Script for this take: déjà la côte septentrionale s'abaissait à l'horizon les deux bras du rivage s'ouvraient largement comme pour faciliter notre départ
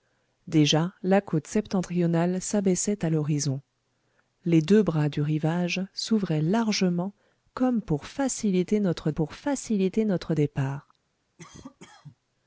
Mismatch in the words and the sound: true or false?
true